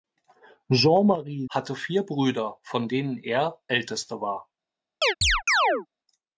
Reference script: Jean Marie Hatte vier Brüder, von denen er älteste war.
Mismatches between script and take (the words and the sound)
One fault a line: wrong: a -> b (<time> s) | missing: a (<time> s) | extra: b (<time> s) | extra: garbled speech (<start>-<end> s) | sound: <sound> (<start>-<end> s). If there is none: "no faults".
sound: chirp (5.0-5.9 s)